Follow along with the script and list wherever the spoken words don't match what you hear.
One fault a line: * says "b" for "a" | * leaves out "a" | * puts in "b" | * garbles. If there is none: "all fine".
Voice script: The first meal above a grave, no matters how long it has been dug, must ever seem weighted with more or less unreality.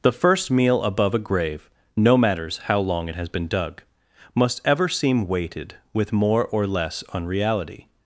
all fine